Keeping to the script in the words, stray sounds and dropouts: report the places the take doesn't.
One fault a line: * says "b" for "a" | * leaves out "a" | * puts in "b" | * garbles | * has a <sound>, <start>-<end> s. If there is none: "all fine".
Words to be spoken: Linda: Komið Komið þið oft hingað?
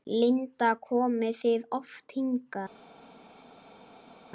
* leaves out "Komið"